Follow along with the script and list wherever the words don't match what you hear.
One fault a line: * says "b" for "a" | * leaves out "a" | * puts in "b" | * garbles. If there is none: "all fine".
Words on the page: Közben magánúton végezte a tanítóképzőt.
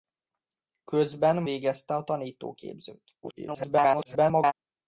* leaves out "magánúton"
* garbles